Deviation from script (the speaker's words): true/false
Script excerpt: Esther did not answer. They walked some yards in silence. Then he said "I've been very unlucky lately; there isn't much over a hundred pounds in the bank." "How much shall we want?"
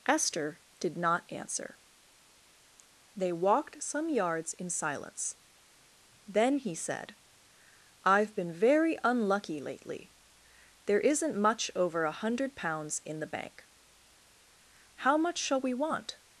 false